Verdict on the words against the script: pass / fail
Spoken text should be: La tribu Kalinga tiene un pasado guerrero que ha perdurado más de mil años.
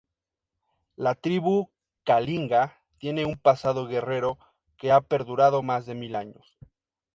pass